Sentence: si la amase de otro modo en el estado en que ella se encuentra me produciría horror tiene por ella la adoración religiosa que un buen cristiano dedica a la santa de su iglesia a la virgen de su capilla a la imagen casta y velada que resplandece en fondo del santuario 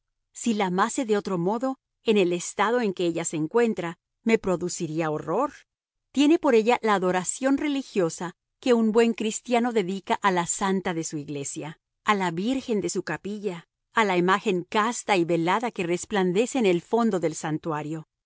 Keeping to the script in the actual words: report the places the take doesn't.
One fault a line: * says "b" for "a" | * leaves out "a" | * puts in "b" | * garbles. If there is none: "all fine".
* puts in "el"